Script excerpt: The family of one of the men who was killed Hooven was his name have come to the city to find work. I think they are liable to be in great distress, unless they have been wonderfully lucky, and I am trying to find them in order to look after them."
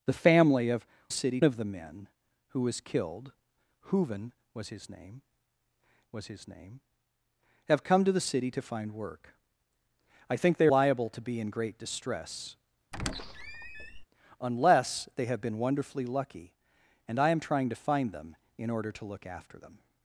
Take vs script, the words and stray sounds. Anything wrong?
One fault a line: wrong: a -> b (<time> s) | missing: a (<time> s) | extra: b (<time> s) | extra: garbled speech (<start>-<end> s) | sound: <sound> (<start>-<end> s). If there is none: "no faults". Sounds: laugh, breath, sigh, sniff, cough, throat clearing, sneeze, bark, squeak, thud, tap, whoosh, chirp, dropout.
wrong: one -> city (1.1 s)
extra: was his name (6.1 s)
missing: are (10.7 s)
sound: squeak (12.9-14.0 s)